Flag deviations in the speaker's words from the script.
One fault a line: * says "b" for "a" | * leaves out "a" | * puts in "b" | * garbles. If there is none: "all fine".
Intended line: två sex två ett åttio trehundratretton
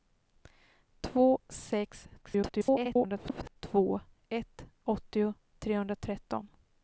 * garbles